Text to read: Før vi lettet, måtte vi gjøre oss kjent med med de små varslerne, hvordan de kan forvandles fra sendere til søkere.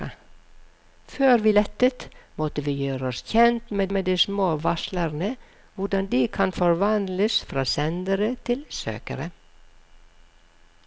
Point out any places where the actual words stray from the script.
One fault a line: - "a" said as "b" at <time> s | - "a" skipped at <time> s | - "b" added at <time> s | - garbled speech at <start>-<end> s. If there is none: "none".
none